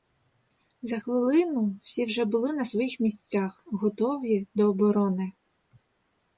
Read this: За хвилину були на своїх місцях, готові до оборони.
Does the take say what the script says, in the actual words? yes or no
no